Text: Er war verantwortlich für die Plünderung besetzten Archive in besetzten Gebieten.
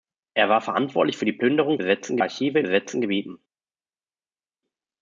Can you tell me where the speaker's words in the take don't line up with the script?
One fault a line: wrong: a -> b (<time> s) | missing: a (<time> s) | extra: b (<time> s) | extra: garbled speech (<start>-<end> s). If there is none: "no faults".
no faults